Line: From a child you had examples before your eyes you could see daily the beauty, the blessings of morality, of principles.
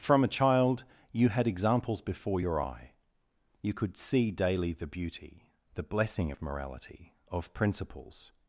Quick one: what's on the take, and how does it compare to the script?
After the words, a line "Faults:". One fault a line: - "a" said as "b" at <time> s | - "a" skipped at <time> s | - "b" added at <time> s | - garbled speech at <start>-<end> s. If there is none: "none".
From a child you had examples before your eye you could see daily the beauty, the blessing of morality, of principles.
Faults:
- "eyes" said as "eye" at 2.6 s
- "blessings" said as "blessing" at 5.8 s